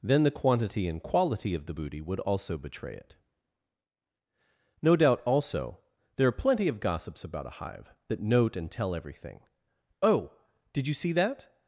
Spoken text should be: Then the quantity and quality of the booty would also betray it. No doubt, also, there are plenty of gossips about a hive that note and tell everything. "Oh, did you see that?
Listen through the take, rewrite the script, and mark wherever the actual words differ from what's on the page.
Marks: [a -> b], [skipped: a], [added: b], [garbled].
Then the quantity and quality of the booty would also betray it. No doubt, also, there are plenty of gossips about a hive that note and tell everything. "Oh, did you see that?